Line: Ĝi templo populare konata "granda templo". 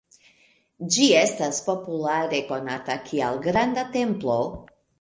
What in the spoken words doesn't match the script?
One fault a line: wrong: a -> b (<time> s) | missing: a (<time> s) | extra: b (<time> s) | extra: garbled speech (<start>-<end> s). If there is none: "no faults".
wrong: templo -> estas (1.2 s)
extra: kiel (3.1 s)